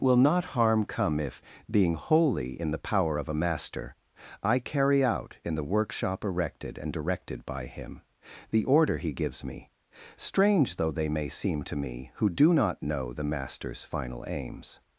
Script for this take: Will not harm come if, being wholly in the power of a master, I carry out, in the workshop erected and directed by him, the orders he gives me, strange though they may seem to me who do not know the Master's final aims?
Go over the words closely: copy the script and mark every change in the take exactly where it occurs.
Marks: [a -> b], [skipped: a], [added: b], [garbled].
Will not harm come if, being wholly in the power of a master, I carry out, in the workshop erected and directed by him, the [orders -> order] he gives me, strange though they may seem to me who do not know the Master's final aims?